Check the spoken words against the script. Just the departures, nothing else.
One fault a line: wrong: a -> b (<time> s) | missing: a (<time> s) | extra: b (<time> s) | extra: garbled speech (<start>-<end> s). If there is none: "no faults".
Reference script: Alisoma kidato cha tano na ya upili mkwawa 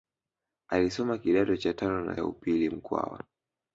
no faults